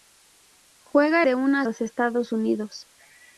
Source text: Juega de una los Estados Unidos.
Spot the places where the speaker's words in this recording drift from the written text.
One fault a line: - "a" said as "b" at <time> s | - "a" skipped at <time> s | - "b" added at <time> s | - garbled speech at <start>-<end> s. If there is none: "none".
none